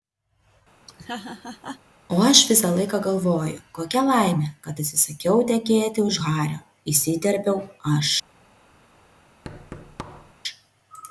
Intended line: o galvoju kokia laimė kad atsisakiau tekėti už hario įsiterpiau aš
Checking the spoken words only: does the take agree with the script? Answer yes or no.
no